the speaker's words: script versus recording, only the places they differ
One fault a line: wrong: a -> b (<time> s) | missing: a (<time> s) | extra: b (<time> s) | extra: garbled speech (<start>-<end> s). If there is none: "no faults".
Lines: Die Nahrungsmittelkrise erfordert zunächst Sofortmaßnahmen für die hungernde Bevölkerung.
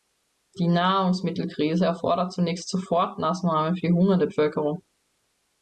no faults